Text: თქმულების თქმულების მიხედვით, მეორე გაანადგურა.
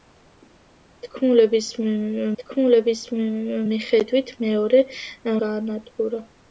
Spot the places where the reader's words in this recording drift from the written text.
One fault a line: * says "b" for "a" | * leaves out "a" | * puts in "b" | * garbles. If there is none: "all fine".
all fine